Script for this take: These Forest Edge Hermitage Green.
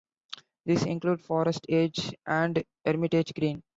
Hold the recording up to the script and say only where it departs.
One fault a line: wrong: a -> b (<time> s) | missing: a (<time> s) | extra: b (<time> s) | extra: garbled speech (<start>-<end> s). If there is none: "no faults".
extra: include (0.9 s)
extra: and (2.2 s)